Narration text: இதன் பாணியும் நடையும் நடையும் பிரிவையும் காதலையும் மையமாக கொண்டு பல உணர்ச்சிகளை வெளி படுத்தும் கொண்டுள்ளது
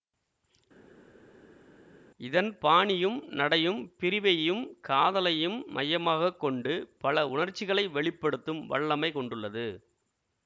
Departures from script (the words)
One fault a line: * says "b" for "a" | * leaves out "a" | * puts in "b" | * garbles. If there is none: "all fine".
* leaves out "நடையும்"
* puts in "வல்லமை"